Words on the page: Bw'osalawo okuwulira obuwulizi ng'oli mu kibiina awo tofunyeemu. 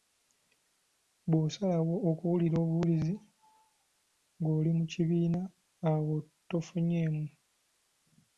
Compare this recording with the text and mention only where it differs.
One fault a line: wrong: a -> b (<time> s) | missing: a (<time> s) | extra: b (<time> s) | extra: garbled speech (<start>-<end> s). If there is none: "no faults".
no faults